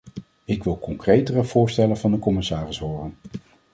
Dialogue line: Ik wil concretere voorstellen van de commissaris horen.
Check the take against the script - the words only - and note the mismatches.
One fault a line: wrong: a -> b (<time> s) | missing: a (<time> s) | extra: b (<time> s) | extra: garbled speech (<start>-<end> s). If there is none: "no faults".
no faults